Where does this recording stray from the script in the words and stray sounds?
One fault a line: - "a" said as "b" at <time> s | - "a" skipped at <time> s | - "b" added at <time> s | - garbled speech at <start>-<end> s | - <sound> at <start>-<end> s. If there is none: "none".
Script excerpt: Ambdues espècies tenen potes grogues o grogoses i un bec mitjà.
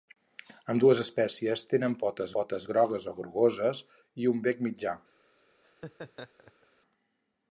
- "potes" added at 2.4 s
- laugh at 5.6-6.7 s